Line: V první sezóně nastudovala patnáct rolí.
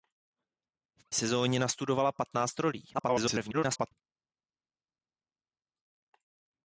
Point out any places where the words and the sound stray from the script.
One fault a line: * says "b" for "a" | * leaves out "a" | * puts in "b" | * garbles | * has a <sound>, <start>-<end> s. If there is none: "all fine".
* leaves out "první"
* garbles